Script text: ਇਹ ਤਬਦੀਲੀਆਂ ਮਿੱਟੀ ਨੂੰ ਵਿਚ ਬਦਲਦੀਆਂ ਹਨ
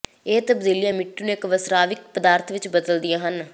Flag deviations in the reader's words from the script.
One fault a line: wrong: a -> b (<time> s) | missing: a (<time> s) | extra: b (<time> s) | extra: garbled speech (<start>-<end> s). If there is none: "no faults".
extra: ਇਕ ਵਸਰਾਵਿਕ ਪਦਾਰਥ (1.3 s)